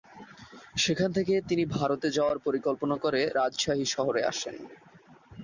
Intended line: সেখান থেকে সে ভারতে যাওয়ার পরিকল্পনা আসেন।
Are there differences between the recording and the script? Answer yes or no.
yes